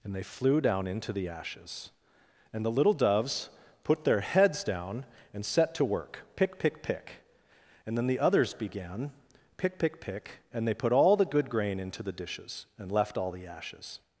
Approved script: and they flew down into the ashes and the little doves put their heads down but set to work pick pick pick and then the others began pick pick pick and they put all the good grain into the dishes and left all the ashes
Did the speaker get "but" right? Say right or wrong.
wrong